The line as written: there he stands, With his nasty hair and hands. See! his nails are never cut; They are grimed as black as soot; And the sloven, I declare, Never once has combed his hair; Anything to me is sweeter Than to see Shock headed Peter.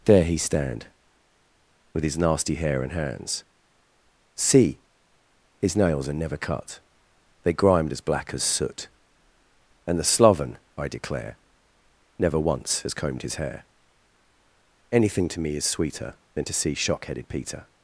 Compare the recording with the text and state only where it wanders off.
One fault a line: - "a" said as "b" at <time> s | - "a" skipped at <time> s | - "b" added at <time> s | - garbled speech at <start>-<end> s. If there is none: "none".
- "stands" said as "stand" at 0.4 s
- "are" skipped at 7.5 s